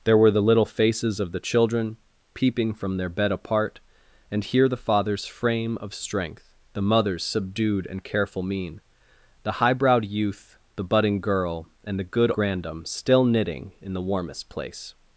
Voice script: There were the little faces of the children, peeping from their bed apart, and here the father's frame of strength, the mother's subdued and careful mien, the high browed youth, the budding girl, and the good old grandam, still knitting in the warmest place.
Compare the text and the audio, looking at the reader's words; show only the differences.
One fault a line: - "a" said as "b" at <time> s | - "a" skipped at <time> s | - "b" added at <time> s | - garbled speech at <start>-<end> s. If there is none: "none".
- "old" skipped at 12.3 s